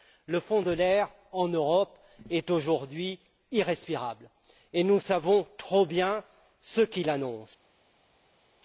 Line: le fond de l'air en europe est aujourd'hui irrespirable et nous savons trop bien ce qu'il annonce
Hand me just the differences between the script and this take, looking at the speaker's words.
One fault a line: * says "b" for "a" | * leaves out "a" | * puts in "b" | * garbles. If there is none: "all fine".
all fine